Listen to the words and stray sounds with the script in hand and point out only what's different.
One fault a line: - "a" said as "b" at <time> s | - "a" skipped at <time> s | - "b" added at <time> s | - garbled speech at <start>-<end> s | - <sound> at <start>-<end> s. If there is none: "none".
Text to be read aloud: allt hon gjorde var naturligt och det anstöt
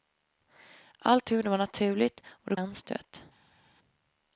none